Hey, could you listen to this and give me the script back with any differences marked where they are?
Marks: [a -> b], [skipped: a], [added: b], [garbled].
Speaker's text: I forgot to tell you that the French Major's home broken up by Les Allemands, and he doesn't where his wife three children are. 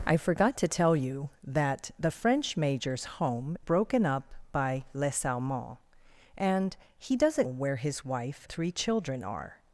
I forgot to tell you that the French Major's home broken up by Les Allemands, and he doesn't where his wife three children are.